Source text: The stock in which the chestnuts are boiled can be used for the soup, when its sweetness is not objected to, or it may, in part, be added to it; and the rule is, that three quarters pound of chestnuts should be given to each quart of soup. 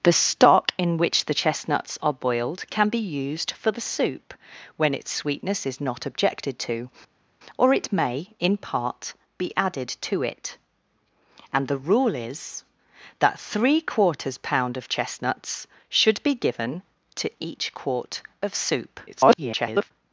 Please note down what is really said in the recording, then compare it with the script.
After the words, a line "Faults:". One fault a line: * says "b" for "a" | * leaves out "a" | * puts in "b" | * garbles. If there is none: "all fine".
The stock in which the chestnuts are boiled can be used for the soup, when its sweetness is not objected to, or it may, in part, be added to it; and the rule is, that three quarters pound of chestnuts should be given to each quart of soup. [garbled]
Faults:
* garbles